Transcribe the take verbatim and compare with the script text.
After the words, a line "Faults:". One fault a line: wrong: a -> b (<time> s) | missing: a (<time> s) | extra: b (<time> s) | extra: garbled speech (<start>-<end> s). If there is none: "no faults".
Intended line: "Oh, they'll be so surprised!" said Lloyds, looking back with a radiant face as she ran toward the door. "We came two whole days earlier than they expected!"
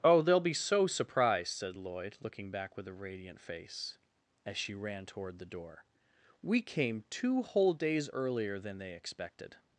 "Oh, they'll be so surprised!" said Lloyd, looking back with a radiant face as she ran toward the door. "We came two whole days earlier than they expected!"
Faults:
wrong: Lloyds -> Lloyd (1.8 s)